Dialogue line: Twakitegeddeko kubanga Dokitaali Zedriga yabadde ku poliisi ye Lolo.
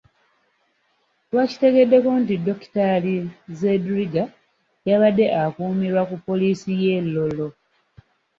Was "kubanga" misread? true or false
true